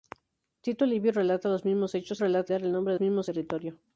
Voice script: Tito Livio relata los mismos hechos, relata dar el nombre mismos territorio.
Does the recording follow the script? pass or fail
pass